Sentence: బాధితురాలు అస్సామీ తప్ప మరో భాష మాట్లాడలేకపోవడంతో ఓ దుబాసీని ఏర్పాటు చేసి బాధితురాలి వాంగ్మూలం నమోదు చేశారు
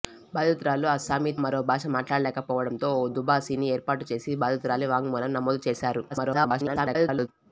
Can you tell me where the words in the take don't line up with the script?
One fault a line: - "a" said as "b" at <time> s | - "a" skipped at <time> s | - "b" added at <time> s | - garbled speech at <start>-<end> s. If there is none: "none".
- "తప్ప" skipped at 1.3 s
- garbled speech at 6.1-7.3 s